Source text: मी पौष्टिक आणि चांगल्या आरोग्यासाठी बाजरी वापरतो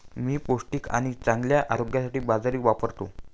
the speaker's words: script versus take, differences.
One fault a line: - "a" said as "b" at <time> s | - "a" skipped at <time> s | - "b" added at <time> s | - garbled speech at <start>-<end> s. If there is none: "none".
none